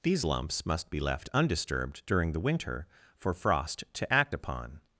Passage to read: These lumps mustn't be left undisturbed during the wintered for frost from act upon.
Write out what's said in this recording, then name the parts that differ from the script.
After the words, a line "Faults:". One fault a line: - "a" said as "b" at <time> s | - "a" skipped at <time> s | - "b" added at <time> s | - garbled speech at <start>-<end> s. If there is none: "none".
These lumps must be left undisturbed during the winter for frost to act upon.
Faults:
- "mustn't" said as "must" at 0.6 s
- "wintered" said as "winter" at 2.4 s
- "from" said as "to" at 3.9 s